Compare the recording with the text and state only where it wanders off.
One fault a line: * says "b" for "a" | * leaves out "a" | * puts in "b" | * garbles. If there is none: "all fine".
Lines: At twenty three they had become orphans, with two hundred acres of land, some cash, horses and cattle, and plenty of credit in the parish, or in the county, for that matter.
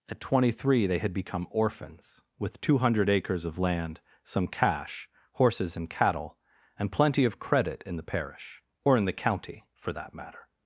all fine